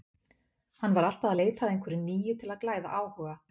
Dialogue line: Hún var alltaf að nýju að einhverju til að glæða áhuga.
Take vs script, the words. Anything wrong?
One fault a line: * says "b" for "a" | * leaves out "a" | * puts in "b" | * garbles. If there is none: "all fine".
* says "Hann" for "Hún"
* says "leita" for "nýju"
* puts in "nýju"